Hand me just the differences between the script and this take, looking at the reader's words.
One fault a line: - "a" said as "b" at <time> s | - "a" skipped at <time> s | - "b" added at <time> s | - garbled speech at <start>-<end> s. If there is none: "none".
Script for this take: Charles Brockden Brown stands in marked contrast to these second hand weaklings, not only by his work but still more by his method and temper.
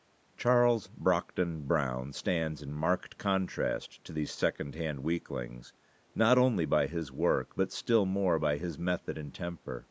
none